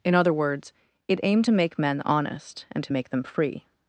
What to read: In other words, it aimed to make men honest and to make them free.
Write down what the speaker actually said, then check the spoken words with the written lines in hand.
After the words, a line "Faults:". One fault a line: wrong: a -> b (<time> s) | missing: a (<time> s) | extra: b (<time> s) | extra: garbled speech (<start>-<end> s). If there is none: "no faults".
In other words, it aimed to make men honest and to make them free.
Faults:
no faults